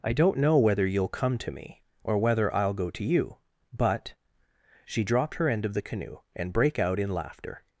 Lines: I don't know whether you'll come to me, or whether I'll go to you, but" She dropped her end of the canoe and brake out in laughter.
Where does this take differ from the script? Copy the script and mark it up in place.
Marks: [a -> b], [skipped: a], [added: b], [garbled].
I don't know whether you'll come to me, or whether I'll go to you, but" She dropped her end of the canoe and brake out in laughter.